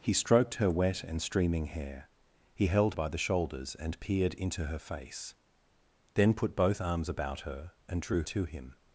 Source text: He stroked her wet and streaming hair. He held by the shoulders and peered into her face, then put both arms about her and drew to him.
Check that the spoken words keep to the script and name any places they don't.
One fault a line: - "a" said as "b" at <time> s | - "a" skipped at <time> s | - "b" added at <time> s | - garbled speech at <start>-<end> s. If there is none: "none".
none